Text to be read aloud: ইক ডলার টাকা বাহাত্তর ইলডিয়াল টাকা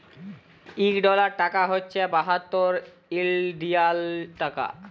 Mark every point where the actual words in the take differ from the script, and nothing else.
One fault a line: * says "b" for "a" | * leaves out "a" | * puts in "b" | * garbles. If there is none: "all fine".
* puts in "হছে"